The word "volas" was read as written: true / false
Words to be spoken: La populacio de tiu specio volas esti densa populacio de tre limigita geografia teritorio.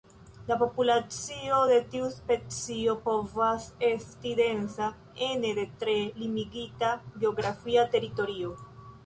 false